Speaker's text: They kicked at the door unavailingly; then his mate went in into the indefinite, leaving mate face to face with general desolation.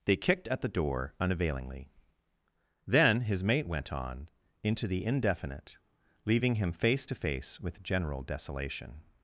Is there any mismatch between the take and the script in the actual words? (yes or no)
yes